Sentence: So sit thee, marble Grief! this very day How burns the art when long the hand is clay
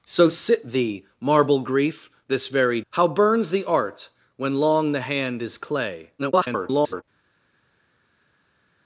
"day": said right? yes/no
no